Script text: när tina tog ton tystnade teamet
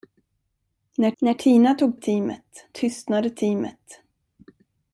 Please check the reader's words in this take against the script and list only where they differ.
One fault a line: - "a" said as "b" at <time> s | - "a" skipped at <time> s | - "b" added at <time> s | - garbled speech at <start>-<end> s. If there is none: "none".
- "när" added at 1.2 s
- "ton" said as "teamet" at 1.9 s